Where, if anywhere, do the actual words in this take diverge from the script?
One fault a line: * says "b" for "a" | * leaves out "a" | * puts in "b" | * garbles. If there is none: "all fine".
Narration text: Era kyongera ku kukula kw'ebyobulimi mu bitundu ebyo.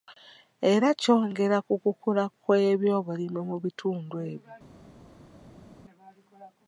all fine